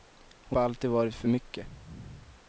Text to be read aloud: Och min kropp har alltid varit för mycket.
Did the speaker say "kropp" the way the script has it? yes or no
no